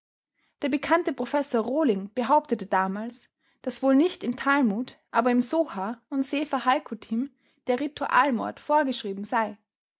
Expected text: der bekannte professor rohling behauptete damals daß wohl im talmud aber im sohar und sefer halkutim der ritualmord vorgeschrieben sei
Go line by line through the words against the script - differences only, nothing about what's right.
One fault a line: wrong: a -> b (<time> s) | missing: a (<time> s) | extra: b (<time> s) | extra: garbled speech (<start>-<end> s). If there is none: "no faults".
extra: nicht (3.9 s)